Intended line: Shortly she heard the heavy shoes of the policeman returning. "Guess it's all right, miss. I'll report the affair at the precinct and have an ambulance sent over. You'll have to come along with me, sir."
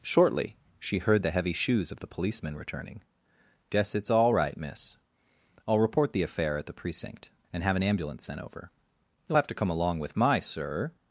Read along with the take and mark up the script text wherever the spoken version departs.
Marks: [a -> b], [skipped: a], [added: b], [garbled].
Shortly she heard the heavy shoes of the policeman returning. "Guess it's all right, miss. I'll report the affair at the precinct and have an ambulance sent over. You'll have to come along with [me, -> my] sir."